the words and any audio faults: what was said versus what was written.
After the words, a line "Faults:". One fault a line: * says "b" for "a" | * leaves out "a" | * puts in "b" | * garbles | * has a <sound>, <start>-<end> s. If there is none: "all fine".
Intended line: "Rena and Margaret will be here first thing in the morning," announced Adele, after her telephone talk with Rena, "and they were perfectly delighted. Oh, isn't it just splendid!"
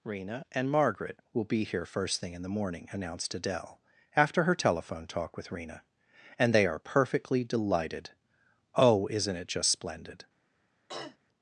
"Rena and Margaret will be here first thing in the morning," announced Adele, after her telephone talk with Rena, "and they are perfectly delighted. Oh, isn't it just splendid!"
Faults:
* says "are" for "were"
* has a throat clearing, 10.9-11.2 s